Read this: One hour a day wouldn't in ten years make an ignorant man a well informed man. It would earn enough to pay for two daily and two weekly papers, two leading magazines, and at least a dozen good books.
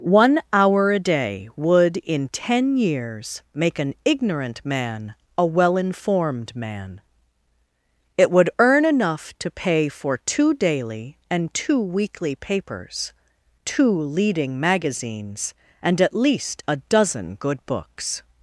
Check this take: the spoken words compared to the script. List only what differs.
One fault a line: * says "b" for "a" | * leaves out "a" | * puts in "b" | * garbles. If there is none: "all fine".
* says "would" for "wouldn't"